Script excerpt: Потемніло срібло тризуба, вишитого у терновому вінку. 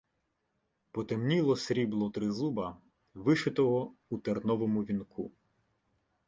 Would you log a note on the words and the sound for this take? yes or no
no